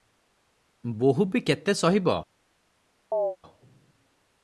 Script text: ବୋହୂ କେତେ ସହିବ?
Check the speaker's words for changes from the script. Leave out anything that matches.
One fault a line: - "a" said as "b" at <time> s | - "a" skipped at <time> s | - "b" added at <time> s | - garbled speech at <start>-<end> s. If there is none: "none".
- "ବି" added at 1.2 s